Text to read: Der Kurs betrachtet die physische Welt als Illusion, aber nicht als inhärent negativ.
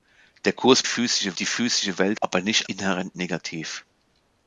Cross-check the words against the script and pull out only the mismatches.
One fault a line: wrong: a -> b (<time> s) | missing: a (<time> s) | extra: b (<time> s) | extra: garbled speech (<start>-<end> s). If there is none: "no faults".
wrong: betrachtet -> physische (0.8 s)
missing: als Illusion (2.2 s)
missing: als (2.7 s)